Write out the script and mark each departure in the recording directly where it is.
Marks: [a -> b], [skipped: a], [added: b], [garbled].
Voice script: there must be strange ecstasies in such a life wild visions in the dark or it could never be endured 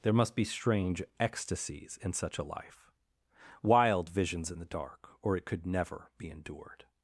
there must be strange ecstasies in such a life wild visions in the dark or it could never be endured